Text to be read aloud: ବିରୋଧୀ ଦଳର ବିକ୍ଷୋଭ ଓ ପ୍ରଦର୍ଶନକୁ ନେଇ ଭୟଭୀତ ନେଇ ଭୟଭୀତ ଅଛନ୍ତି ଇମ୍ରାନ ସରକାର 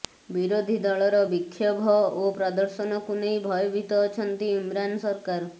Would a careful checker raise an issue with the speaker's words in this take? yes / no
yes